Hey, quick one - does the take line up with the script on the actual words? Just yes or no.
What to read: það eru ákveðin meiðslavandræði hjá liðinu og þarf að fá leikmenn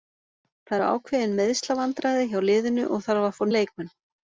yes